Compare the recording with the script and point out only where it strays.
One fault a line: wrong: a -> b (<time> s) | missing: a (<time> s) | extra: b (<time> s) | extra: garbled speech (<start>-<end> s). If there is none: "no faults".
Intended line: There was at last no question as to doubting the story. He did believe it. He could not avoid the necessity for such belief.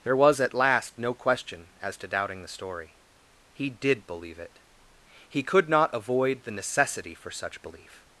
no faults